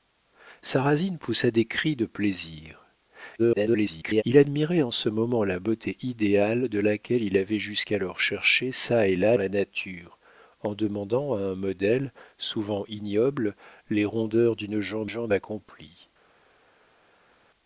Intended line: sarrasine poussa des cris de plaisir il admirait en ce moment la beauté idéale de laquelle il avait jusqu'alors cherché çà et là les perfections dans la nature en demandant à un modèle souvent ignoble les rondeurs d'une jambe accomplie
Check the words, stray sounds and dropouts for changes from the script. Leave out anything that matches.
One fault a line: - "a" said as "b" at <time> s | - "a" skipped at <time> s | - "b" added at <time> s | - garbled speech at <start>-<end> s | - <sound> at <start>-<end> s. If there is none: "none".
- garbled speech at 3.4-4.2 s
- "les perfections dans" skipped at 9.4 s
- "jambe" added at 15.1 s